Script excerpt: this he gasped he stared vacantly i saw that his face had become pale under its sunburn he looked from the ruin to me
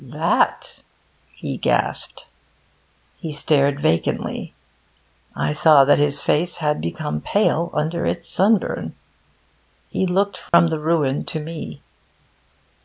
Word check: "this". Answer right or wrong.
wrong